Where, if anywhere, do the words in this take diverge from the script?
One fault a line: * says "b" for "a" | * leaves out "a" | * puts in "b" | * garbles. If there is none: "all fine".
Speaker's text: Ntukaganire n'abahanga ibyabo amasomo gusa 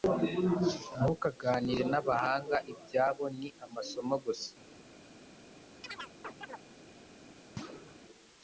* puts in "ni"